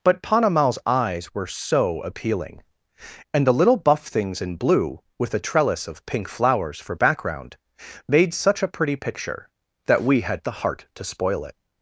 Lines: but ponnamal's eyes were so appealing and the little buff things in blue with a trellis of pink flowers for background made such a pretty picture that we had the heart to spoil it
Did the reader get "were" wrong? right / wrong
right